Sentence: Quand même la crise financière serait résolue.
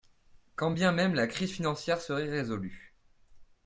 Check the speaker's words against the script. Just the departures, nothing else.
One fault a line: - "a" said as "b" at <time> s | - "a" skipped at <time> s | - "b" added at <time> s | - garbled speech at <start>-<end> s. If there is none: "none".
- "bien" added at 0.7 s